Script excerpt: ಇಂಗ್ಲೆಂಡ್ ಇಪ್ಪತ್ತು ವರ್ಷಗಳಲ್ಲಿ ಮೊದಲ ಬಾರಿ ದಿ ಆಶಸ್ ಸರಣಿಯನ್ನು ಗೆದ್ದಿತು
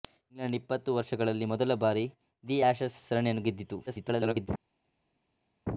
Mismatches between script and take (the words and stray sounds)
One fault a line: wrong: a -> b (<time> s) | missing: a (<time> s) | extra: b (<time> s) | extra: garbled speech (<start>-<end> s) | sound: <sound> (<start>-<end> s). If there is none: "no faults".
extra: garbled speech (3.9-4.5 s)